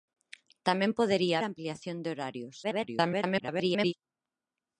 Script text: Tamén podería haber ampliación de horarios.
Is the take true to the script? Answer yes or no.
no